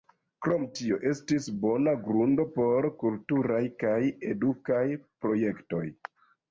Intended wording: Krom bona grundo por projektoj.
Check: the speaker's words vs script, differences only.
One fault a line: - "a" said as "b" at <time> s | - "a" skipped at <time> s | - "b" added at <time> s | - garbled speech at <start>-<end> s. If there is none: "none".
- "tio estis" added at 0.8 s
- "kulturaj kaj edukaj" added at 3.0 s